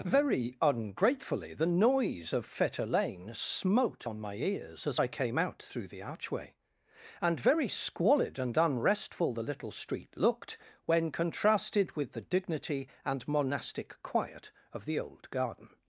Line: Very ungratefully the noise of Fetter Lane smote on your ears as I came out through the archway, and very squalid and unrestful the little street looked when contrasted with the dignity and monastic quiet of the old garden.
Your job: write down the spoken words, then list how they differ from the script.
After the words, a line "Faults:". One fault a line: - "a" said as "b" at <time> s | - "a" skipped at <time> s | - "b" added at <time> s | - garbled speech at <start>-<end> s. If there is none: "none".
Very ungratefully the noise of Fetter Lane smote on my ears as I came out through the archway, and very squalid and unrestful the little street looked when contrasted with the dignity and monastic quiet of the old garden.
Faults:
- "your" said as "my" at 4.2 s